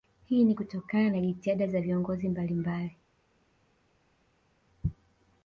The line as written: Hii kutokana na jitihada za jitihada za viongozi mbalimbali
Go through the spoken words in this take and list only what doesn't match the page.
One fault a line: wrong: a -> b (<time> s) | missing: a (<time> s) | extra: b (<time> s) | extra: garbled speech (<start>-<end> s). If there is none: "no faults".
extra: ni (0.4 s)
missing: jitihada za (1.8 s)